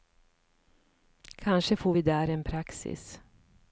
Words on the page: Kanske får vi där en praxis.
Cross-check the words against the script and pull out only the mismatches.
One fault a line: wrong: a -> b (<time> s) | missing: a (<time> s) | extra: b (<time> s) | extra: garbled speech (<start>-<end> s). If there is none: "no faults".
no faults